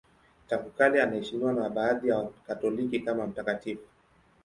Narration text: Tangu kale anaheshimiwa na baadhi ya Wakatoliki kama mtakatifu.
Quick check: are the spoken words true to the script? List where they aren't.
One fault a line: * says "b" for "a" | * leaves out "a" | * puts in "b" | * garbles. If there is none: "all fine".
all fine